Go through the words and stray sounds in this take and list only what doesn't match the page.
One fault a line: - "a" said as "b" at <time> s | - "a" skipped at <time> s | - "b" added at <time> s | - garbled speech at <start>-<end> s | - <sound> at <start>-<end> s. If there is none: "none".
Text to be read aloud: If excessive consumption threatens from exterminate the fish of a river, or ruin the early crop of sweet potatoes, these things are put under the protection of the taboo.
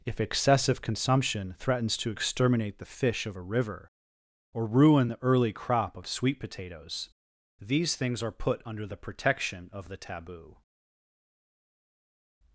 - "from" said as "to" at 2.0 s